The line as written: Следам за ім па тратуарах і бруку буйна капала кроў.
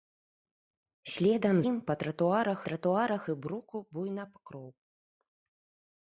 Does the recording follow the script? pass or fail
fail